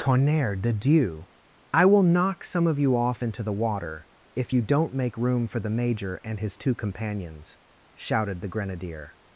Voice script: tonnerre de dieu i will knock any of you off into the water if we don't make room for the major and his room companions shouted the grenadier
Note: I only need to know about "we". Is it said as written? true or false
false